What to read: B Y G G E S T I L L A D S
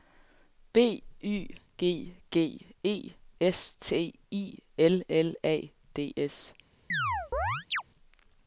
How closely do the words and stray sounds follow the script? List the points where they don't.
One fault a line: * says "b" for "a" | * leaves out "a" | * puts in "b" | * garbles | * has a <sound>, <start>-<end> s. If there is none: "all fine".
* has a chirp, 6.9-7.8 s